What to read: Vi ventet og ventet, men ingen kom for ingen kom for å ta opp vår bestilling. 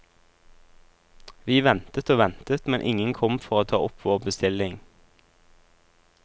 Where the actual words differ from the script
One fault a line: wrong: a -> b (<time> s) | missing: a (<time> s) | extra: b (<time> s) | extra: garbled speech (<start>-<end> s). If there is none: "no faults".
missing: ingen kom for (3.6 s)